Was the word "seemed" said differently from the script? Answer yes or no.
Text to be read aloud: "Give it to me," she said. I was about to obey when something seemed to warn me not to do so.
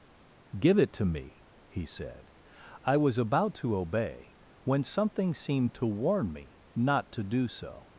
no